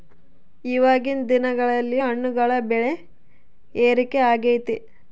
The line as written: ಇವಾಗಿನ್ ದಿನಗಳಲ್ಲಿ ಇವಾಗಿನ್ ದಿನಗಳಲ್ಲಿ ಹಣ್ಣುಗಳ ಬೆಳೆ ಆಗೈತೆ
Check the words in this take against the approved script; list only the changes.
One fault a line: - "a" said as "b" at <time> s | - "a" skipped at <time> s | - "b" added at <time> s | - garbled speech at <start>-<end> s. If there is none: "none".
- "ಇವಾಗಿನ್ ದಿನಗಳಲ್ಲಿ" skipped at 2.0 s
- "ಏರಿಕೆ" added at 3.8 s